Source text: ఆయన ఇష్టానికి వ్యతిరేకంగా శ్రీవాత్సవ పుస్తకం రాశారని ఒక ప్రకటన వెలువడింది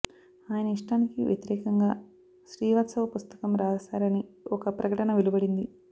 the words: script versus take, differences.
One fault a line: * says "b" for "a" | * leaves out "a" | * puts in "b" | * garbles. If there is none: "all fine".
all fine